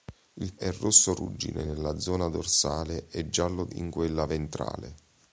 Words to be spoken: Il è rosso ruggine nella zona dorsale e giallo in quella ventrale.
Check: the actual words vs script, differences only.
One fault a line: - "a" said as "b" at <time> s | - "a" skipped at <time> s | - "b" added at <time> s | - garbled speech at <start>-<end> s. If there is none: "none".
none